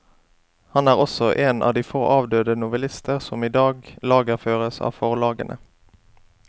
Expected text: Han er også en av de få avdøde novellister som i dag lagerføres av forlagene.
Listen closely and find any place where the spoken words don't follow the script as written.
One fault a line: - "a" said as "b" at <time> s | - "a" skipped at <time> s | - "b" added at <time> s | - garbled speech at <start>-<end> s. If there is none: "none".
none